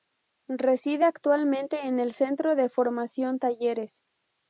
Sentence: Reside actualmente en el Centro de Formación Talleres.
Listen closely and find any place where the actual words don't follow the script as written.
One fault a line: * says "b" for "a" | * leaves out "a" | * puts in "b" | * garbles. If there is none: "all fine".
all fine